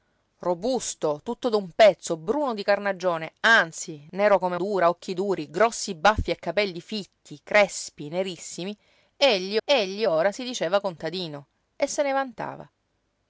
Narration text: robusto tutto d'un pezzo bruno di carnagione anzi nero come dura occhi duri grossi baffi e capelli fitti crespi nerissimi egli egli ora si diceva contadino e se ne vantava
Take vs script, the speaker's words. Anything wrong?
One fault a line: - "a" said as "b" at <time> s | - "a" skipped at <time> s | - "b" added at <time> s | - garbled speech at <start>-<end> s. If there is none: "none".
none